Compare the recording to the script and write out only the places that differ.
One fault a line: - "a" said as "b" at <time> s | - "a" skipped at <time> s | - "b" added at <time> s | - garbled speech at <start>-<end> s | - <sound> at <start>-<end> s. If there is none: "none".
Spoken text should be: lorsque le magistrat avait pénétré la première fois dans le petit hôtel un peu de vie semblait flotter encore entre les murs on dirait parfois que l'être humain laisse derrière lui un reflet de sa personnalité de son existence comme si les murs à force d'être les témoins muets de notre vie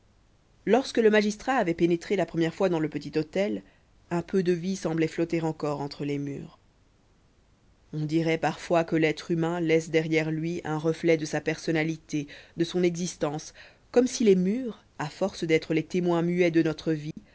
- dropout at 17.1-17.2 s